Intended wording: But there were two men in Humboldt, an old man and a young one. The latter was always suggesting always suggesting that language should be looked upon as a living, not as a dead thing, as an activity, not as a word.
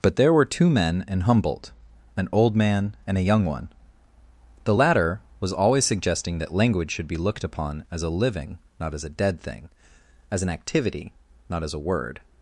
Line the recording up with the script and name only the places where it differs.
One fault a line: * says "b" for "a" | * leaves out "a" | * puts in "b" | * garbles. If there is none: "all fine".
* leaves out "always suggesting"